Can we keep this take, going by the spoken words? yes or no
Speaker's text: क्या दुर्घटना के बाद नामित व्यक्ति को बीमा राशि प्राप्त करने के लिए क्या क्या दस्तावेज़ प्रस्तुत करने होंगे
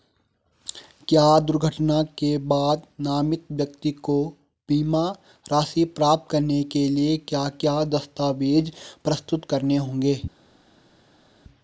yes